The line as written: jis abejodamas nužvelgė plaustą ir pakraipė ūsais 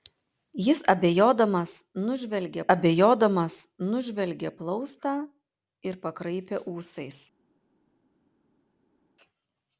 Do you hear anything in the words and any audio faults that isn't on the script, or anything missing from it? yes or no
yes